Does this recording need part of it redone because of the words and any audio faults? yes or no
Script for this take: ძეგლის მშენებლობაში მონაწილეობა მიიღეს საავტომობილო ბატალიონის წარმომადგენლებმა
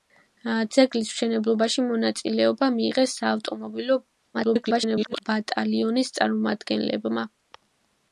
yes